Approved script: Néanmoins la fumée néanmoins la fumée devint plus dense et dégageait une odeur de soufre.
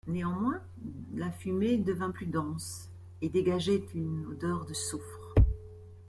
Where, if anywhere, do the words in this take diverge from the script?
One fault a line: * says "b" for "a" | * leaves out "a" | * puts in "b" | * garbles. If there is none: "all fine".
* leaves out "néanmoins la fumée"